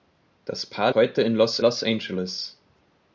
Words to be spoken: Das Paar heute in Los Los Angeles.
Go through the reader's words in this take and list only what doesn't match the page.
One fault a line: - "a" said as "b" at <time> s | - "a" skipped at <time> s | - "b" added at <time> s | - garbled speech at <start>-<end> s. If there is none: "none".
none